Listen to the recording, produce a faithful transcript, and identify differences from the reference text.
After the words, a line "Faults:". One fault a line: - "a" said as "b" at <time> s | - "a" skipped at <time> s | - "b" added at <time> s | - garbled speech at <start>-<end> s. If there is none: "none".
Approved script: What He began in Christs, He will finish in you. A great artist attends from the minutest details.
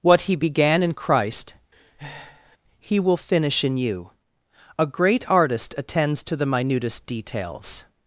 What He began in Christ, He will finish in you. A great artist attends to the minutest details.
Faults:
- "Christs" said as "Christ" at 0.9 s
- "from" said as "to" at 6.2 s